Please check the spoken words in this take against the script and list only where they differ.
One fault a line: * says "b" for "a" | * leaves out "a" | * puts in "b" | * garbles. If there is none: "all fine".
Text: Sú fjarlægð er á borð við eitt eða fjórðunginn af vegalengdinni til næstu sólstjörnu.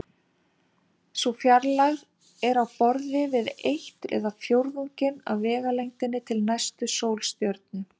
all fine